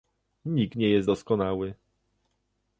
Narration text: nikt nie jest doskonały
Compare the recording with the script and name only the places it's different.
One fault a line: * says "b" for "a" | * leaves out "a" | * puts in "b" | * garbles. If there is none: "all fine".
all fine